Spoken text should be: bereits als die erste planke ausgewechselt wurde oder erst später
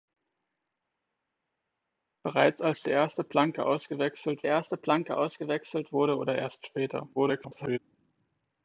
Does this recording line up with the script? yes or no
no